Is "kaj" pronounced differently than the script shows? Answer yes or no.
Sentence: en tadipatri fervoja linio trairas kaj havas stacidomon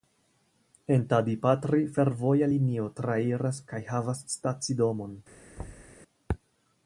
no